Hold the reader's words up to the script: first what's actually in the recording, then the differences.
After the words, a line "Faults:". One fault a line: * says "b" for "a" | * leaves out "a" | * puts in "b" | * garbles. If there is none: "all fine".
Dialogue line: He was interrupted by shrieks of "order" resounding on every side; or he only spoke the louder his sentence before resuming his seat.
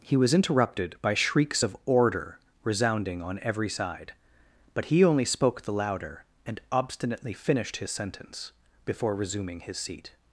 He was interrupted by shrieks of "order" resounding on every side; but he only spoke the louder and obstinately finished his sentence before resuming his seat.
Faults:
* says "but" for "or"
* puts in "and obstinately finished"